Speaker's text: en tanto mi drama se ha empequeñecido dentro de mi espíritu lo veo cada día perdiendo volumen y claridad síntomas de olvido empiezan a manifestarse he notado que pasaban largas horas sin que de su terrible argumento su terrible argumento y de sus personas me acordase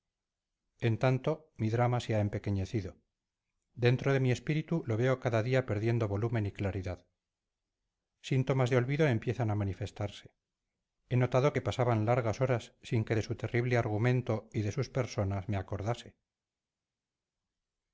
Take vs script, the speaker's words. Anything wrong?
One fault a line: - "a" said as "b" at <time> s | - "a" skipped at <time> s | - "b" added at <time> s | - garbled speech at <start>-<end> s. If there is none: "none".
- "su terrible argumento" skipped at 14.5 s